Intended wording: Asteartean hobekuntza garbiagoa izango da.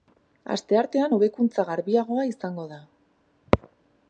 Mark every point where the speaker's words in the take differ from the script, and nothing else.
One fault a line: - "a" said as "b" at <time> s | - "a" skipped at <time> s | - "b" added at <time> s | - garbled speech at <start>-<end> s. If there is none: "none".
none